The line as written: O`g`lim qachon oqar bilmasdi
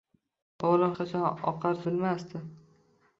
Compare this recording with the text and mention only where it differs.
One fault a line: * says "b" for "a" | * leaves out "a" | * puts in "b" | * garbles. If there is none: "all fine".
all fine